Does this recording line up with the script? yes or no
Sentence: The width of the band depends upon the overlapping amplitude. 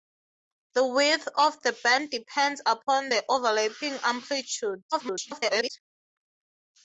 no